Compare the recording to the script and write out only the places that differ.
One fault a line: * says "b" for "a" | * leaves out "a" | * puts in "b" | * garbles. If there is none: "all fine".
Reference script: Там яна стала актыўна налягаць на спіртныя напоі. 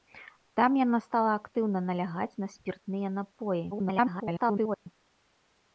* garbles